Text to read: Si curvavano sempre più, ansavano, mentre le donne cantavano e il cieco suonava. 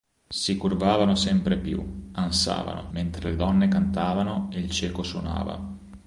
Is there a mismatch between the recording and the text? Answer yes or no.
no